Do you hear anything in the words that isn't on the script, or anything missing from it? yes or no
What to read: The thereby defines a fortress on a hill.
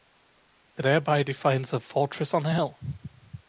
no